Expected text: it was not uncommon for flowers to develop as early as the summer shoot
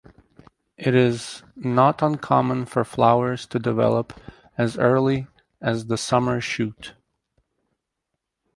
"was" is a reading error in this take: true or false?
true